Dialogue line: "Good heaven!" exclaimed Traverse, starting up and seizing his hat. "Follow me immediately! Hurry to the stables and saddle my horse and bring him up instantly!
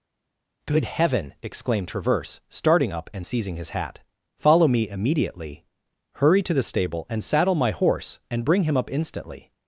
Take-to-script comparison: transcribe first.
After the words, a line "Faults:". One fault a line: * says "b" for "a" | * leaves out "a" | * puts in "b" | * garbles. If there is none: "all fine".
"Good heaven!" exclaimed Traverse, starting up and seizing his hat. "Follow me immediately! Hurry to the stable and saddle my horse and bring him up instantly!
Faults:
* says "stable" for "stables"